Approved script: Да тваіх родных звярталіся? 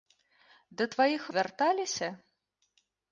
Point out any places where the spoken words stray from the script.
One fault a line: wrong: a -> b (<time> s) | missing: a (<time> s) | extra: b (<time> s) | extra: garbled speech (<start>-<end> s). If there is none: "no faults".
missing: родных (1.3 s)